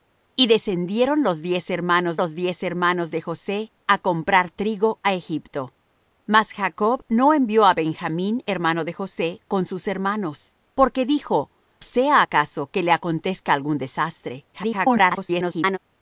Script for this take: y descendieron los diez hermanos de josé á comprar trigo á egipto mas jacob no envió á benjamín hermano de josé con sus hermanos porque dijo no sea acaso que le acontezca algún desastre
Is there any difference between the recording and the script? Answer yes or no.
yes